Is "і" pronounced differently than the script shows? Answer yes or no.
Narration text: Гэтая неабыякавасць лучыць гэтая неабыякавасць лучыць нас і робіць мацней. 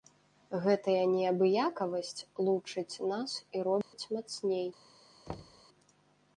no